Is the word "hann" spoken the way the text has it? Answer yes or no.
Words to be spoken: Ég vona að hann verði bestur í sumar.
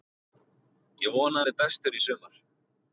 no